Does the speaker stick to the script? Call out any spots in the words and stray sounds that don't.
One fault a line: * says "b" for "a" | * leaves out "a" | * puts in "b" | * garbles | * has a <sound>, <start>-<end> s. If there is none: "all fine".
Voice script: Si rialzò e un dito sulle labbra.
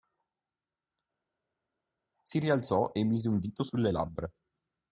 * puts in "mise"